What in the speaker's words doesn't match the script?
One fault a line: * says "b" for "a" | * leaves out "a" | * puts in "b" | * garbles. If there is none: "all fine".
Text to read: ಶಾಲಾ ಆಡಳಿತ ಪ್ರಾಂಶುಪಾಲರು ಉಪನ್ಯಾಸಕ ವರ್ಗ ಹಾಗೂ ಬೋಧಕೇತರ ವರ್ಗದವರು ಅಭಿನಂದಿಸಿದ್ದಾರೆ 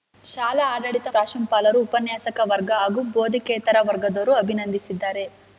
all fine